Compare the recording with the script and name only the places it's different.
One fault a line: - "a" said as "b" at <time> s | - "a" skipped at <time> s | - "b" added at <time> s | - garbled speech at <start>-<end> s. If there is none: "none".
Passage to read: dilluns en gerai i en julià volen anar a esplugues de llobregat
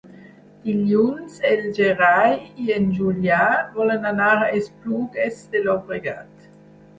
none